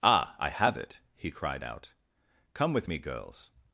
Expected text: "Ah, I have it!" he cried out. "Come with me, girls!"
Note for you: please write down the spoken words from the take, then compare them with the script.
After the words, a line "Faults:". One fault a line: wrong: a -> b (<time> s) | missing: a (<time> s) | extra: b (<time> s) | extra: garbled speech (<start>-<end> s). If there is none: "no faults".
"Ah, I have it!" he cried out. "Come with me, girls!"
Faults:
no faults